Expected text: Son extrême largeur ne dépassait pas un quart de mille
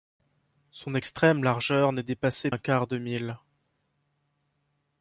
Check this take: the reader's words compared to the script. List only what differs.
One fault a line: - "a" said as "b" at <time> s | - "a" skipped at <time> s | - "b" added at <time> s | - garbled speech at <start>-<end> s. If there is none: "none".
- "pas" skipped at 2.5 s